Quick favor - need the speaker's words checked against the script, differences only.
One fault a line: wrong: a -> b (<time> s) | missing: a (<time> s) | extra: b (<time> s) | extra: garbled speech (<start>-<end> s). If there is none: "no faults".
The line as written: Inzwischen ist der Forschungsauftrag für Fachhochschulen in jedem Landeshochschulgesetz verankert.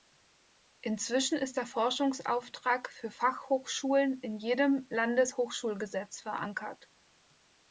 no faults